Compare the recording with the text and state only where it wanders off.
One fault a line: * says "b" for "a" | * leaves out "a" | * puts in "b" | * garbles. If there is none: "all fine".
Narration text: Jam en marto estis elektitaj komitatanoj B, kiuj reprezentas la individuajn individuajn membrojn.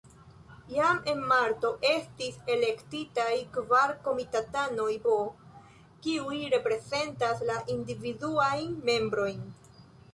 * puts in "kvar"
* leaves out "individuajn"